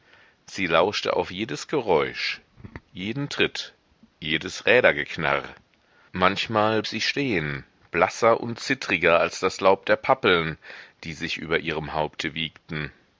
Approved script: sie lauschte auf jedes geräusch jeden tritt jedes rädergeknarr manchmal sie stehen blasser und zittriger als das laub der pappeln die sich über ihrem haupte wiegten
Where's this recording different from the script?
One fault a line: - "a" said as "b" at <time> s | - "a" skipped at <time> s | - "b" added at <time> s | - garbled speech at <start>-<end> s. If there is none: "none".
none